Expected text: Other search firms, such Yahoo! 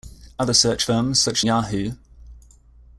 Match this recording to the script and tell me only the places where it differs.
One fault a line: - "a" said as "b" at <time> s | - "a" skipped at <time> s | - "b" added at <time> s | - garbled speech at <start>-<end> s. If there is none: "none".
none